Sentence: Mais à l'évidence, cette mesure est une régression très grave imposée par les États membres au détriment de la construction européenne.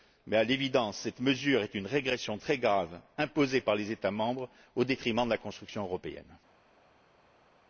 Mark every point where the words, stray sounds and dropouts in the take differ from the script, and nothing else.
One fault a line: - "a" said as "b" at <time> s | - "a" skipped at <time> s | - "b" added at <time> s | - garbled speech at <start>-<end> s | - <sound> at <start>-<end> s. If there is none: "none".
none